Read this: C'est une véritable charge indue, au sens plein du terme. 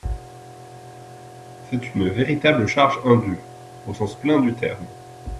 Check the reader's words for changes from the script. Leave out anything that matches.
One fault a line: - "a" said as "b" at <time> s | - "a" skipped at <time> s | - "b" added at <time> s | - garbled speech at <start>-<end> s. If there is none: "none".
none